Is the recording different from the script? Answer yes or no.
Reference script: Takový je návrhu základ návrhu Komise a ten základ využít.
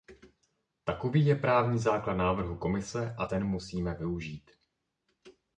yes